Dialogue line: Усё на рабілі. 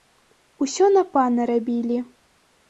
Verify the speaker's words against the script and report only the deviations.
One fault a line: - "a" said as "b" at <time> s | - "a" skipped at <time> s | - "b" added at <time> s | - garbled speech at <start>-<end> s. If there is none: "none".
- "пана" added at 1.2 s